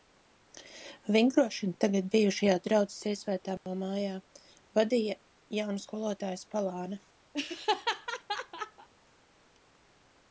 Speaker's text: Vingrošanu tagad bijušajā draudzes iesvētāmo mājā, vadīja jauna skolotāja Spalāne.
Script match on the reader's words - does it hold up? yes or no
yes